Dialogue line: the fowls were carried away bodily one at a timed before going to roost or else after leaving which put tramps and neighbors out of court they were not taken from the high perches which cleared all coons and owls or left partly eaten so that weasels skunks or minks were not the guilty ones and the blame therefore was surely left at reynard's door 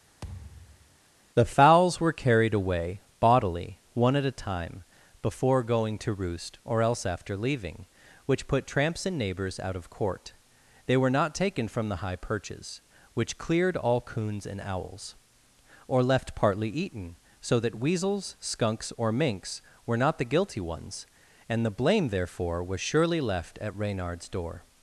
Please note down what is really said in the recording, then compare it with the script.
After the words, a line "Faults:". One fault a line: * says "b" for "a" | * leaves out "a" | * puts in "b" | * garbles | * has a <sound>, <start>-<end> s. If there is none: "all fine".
the fowls were carried away bodily one at a time before going to roost or else after leaving which put tramps and neighbors out of court they were not taken from the high perches which cleared all coons and owls or left partly eaten so that weasels skunks or minks were not the guilty ones and the blame therefore was surely left at reynard's door
Faults:
* has a thud, 0.2-1.0 s
* says "time" for "timed"